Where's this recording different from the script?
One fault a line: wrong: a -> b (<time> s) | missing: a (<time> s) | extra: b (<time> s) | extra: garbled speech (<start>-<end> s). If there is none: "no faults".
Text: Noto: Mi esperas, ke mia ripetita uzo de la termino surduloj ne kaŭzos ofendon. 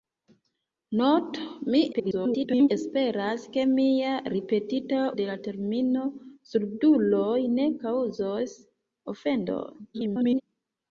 extra: garbled speech (1.9-2.7 s)
missing: uzo (5.0 s)
extra: garbled speech (9.9-10.4 s)